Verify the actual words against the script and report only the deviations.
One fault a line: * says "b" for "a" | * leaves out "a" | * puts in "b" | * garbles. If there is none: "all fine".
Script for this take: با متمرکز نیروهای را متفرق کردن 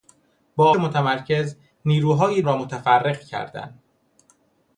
all fine